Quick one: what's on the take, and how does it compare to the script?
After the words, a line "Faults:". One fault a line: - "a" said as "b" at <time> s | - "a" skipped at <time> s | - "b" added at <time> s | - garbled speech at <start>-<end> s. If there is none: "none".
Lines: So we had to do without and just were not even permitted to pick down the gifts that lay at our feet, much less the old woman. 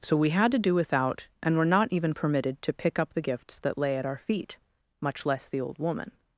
So we had to do without and were not even permitted to pick up the gifts that lay at our feet, much less the old woman.
Faults:
- "just" skipped at 1.6 s
- "down" said as "up" at 3.0 s